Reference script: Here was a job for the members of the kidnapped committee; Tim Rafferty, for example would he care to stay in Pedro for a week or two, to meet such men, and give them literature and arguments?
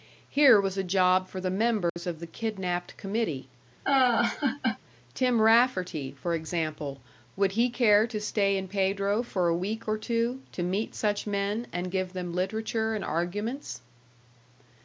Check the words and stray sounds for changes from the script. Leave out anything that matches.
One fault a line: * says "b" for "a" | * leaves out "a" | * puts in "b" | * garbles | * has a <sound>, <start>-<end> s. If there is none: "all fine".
* has a dropout, 1.9-2.0 s
* has a laugh, 3.8-4.8 s